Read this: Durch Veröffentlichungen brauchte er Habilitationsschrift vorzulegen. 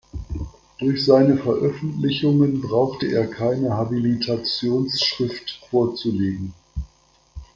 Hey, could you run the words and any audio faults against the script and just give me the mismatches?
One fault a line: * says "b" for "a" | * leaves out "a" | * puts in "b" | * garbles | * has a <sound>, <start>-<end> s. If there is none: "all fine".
* puts in "seine"
* puts in "keine"